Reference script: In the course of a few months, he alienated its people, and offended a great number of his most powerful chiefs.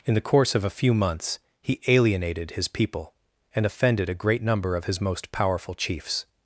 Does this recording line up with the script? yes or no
no